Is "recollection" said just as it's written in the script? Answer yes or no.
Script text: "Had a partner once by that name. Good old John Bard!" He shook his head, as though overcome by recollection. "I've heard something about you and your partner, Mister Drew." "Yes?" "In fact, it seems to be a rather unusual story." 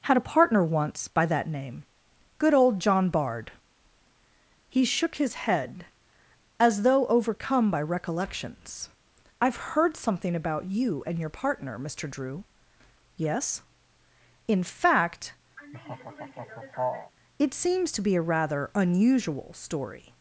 no